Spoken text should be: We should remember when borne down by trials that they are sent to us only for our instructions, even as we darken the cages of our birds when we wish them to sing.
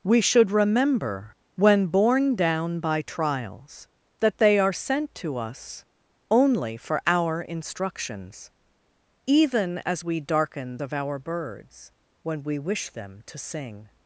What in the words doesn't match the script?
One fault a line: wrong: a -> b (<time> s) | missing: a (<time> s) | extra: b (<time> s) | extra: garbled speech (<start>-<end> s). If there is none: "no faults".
missing: the cages (10.8 s)